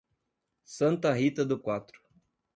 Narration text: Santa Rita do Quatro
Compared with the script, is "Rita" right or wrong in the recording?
right